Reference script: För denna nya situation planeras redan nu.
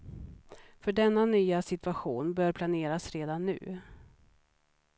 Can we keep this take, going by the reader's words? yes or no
no